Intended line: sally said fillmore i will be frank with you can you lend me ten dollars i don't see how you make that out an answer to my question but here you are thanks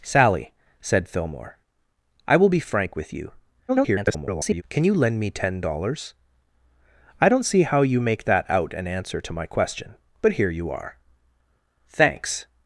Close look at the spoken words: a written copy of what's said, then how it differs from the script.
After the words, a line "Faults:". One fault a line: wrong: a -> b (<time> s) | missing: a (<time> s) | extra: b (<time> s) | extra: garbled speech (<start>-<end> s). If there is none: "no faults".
sally said fillmore i will be frank with you [garbled] can you lend me ten dollars i don't see how you make that out an answer to my question but here you are thanks
Faults:
extra: garbled speech (3.7-4.6 s)